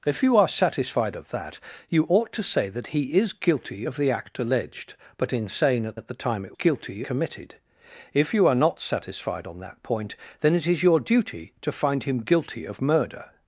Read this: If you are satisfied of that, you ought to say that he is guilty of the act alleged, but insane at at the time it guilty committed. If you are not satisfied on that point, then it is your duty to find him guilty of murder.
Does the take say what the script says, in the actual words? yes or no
yes